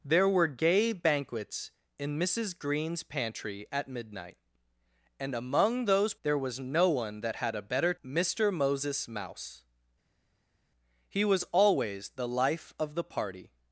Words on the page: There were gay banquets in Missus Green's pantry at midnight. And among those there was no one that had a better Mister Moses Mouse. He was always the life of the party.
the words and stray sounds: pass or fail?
pass